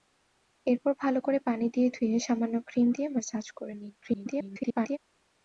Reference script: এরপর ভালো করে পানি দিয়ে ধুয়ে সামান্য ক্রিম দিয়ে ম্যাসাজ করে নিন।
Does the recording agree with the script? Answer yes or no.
no